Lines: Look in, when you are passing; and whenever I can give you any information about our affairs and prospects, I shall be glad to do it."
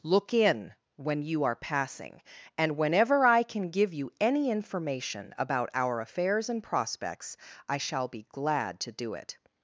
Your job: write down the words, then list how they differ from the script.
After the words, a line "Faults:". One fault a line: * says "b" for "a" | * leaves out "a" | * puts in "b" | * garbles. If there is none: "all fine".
Look in, when you are passing; and whenever I can give you any information about our affairs and prospects, I shall be glad to do it."
Faults:
all fine